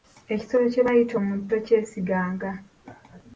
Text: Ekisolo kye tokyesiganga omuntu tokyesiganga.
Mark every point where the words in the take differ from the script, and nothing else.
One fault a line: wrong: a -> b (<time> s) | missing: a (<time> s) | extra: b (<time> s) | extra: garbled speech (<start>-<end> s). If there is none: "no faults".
wrong: tokyesiganga -> bayita (0.9 s)